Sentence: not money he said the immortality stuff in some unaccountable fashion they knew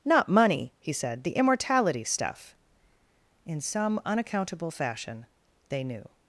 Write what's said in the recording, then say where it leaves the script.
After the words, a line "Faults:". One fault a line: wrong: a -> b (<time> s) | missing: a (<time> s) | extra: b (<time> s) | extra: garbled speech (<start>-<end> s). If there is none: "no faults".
not money he said the immortality stuff in some unaccountable fashion they knew
Faults:
no faults